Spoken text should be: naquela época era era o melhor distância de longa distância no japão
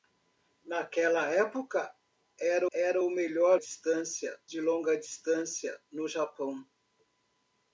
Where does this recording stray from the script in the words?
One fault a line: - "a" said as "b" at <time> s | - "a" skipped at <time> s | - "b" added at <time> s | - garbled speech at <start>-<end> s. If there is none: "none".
none